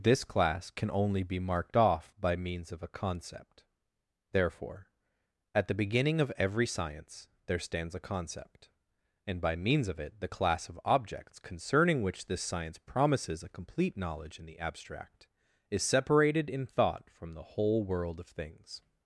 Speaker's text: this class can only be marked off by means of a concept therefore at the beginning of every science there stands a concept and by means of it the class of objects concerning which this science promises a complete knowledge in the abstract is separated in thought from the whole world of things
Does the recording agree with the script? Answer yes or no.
yes